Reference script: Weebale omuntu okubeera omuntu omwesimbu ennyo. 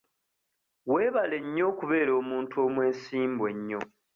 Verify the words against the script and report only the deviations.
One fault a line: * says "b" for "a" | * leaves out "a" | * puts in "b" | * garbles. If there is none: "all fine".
* says "nnyo" for "omuntu"